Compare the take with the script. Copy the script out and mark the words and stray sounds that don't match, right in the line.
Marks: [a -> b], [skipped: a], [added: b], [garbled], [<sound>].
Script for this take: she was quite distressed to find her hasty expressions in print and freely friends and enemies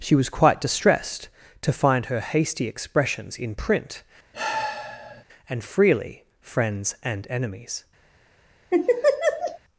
she was quite distressed to find her hasty expressions in print [sigh] and freely friends and enemies [laugh]